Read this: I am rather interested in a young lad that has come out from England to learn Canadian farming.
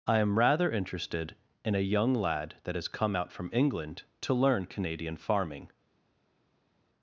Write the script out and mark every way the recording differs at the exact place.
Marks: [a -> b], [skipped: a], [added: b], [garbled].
I am rather interested in a young lad that has come out from England to learn Canadian farming.